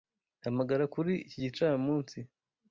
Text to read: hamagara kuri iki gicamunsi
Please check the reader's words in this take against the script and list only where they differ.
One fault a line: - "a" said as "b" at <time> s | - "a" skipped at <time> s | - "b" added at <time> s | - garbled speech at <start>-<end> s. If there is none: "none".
none